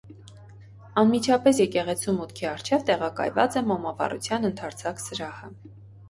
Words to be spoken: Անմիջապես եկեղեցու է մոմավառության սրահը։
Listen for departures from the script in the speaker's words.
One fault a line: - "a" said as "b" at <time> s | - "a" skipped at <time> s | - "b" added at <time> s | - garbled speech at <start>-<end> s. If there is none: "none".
- "մուտքի առջև տեղակայված" added at 2.2 s
- "ընդարձակ" added at 4.5 s